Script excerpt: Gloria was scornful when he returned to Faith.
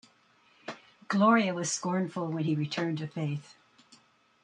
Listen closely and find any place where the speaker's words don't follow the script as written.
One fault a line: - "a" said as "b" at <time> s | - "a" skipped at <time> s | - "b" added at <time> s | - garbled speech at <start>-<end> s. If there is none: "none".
none